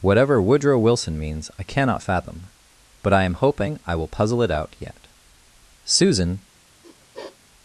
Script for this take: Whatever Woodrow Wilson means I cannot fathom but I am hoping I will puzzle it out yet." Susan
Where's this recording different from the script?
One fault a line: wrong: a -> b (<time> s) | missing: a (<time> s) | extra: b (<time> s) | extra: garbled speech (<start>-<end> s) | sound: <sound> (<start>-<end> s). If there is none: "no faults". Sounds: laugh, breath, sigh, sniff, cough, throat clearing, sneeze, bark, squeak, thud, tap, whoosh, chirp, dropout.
sound: sniff (6.8-7.4 s)